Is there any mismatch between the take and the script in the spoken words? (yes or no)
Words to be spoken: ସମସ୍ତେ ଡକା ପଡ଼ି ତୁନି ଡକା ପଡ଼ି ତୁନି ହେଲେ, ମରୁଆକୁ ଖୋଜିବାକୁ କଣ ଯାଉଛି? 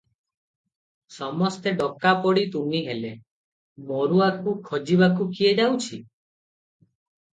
yes